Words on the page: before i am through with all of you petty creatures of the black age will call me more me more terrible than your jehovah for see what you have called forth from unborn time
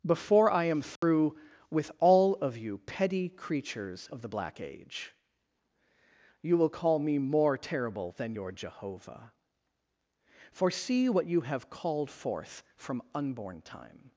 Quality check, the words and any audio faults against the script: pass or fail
fail